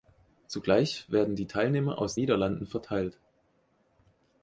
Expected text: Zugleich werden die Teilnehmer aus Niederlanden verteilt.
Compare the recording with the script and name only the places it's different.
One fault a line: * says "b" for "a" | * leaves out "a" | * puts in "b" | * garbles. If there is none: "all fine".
all fine